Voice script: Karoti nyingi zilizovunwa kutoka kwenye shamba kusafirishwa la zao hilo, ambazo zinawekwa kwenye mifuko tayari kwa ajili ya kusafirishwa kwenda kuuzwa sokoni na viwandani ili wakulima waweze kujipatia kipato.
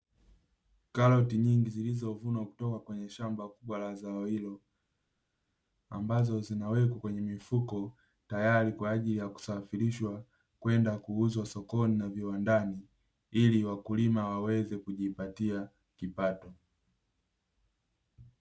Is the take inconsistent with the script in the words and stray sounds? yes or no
yes